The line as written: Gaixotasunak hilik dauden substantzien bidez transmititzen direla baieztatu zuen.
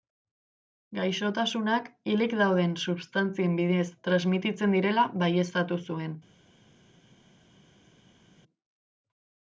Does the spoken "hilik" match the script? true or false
true